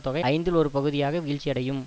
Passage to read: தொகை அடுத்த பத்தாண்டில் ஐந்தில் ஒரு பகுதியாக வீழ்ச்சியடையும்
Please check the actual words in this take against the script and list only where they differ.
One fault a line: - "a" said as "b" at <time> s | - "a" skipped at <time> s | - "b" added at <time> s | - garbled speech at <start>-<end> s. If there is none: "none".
- "அடுத்த பத்தாண்டில்" skipped at 0.2 s